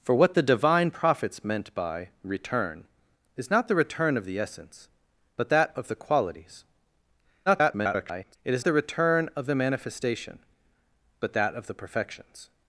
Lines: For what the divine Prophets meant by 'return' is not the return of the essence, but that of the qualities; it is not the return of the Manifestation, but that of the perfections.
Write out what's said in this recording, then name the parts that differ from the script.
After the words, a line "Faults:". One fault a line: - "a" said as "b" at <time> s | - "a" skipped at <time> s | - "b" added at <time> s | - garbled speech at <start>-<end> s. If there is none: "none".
For what the divine Prophets meant by 'return' is not the return of the essence, but that of the qualities; [garbled] it is the return of the Manifestation, but that of the perfections.
Faults:
- garbled speech at 7.5-8.4 s
- "not" skipped at 8.7 s